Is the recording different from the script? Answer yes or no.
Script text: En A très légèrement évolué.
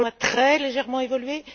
no